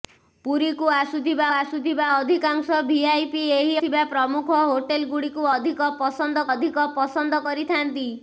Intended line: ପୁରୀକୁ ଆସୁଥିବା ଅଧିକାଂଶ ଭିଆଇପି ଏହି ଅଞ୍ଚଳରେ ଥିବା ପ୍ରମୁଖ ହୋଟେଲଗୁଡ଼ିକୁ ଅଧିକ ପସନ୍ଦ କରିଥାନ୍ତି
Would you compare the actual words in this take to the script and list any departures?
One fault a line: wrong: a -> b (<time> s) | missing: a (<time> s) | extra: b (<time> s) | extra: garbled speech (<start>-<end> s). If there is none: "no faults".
extra: ଆସୁଥିବା (1.5 s)
missing: ଅଞ୍ଚଳରେ (3.8 s)
extra: ଅଧିକ ପସନ୍ଦ (6.5 s)